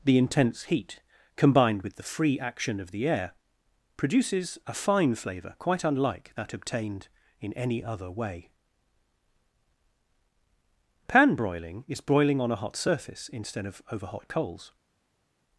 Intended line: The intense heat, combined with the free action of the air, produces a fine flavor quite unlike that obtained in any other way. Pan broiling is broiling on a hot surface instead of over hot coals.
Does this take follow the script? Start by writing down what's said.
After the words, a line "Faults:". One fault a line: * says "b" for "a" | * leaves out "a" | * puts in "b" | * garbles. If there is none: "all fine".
The intense heat, combined with the free action of the air, produces a fine flavor quite unlike that obtained in any other way. Pan broiling is broiling on a hot surface instead of over hot coals.
Faults:
all fine